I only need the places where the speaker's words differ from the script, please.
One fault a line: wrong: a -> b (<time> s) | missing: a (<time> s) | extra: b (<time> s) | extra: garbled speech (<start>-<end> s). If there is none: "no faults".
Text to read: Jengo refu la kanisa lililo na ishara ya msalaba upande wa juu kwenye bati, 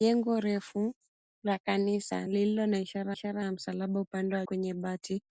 extra: ishara (3.1 s)
missing: juu (4.5 s)